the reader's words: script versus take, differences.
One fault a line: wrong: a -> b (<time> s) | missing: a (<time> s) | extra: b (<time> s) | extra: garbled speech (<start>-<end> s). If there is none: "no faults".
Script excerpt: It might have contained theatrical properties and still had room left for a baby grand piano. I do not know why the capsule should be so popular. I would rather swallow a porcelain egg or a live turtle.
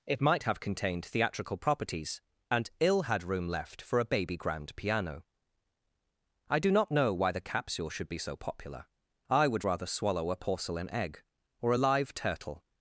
wrong: still -> ill (2.8 s)